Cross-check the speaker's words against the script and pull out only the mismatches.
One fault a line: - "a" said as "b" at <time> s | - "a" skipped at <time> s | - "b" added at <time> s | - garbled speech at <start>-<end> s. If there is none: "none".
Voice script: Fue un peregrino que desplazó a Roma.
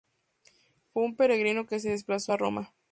- "se" added at 1.8 s